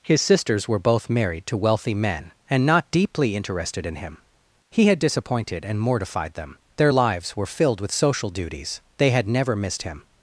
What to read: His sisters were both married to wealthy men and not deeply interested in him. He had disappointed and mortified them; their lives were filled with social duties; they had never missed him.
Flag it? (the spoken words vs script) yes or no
no